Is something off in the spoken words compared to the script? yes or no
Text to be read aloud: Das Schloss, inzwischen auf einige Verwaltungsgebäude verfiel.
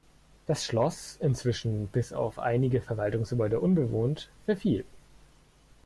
yes